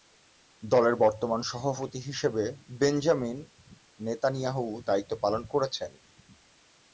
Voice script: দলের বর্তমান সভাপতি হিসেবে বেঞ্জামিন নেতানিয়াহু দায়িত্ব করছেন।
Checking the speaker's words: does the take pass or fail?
fail